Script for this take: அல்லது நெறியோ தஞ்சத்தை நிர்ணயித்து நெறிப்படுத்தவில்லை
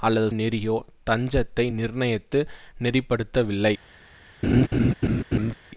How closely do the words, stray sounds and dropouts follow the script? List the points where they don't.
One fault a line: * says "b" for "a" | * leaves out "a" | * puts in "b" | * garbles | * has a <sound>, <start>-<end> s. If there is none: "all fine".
* has a laugh, 4.4-5.5 s